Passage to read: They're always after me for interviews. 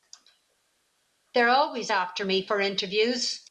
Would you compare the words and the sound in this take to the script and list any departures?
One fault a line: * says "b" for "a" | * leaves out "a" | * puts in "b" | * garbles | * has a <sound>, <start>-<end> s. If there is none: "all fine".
all fine